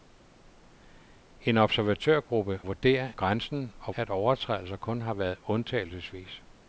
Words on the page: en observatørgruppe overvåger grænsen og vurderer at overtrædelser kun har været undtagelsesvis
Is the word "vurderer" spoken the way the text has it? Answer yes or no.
no